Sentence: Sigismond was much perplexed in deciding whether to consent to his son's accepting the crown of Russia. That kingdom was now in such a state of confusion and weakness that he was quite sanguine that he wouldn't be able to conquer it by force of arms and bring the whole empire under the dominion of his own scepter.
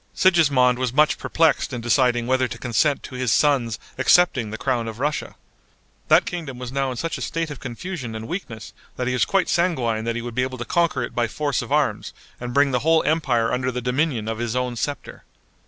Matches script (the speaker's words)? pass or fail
fail